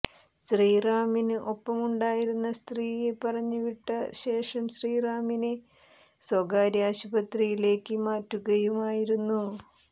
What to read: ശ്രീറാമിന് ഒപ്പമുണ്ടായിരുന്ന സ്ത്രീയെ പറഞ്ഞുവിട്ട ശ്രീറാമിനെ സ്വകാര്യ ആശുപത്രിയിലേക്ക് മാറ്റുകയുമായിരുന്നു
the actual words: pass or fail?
fail